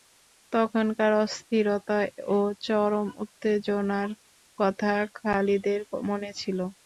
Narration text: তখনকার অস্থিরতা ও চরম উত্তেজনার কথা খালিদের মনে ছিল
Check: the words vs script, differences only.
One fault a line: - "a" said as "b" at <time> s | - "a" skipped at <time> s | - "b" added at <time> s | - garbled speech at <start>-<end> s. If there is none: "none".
none